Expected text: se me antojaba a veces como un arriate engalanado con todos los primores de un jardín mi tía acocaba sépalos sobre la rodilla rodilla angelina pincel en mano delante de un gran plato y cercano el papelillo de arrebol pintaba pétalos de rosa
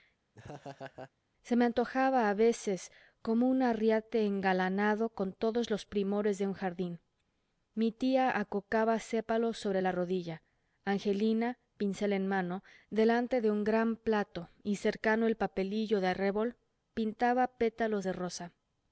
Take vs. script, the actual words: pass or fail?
fail